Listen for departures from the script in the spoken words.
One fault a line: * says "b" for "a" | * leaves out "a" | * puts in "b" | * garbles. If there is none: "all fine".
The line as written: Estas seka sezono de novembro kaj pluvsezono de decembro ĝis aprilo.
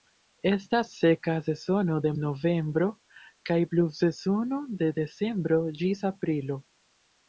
all fine